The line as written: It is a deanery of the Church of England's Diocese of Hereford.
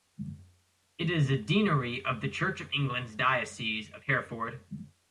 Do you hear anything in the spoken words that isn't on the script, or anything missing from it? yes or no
no